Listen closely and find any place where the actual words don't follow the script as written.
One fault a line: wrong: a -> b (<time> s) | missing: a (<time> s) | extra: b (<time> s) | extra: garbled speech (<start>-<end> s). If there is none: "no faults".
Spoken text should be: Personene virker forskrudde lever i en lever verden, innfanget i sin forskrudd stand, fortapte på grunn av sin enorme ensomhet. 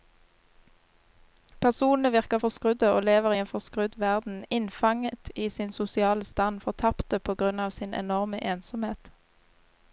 extra: og (2.9 s)
wrong: lever -> forskrudd (3.5 s)
wrong: forskrudd -> sosiale (5.7 s)